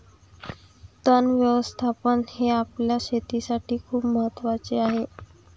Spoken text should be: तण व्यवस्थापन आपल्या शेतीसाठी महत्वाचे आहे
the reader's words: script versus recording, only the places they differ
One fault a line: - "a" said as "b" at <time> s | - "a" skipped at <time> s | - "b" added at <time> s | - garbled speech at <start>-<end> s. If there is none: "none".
- "हे" added at 2.3 s
- "खूप" added at 3.8 s